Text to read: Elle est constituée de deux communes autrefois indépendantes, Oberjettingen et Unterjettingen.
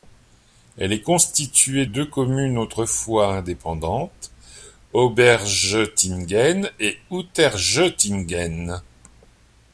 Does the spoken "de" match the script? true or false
false